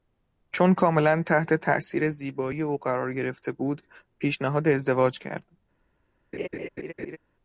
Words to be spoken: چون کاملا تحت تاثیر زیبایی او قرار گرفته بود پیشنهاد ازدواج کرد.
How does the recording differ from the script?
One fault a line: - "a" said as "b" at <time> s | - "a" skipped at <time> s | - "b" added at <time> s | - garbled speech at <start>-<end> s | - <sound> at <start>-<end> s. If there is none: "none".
- laugh at 6.3-7.2 s